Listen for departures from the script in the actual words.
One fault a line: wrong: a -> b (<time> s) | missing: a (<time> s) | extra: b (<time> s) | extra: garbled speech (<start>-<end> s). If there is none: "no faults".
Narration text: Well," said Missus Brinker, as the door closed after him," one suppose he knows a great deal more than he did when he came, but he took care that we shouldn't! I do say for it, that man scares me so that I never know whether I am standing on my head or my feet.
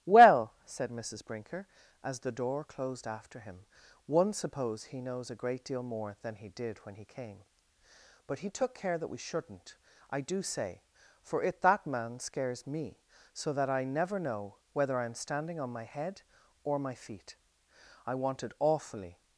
extra: I wanted awfully (18.1 s)